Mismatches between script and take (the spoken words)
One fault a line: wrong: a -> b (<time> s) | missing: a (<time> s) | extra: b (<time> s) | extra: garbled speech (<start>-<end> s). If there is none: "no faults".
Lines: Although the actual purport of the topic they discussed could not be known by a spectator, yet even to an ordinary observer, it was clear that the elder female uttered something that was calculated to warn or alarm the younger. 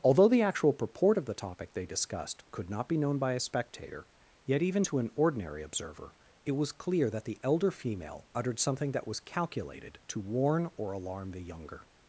no faults